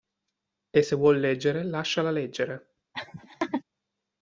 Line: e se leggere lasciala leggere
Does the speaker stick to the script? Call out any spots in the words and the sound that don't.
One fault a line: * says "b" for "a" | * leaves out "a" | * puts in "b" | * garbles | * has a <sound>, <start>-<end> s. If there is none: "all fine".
* puts in "vuol"
* has a laugh, 2.9-3.6 s